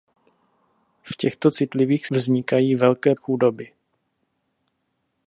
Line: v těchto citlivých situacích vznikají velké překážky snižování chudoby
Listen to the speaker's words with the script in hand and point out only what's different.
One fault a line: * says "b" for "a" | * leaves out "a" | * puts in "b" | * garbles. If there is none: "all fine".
* leaves out "situacích"
* leaves out "překážky snižování"